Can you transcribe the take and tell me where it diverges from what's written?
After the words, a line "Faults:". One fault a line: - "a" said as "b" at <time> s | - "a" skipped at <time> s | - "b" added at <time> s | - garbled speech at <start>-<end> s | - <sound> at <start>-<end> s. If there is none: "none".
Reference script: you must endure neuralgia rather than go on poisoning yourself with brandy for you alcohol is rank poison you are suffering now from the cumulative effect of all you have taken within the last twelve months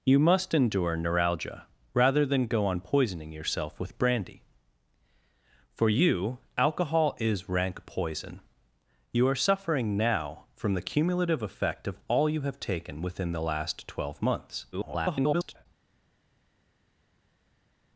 you must endure neuralgia rather than go on poisoning yourself with brandy for you alcohol is rank poison you are suffering now from the cumulative effect of all you have taken within the last twelve months [garbled]
Faults:
- garbled speech at 14.7-15.7 s